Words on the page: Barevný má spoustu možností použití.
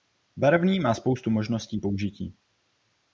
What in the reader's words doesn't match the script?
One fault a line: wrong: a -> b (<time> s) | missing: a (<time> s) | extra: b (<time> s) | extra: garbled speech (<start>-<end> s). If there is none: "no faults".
no faults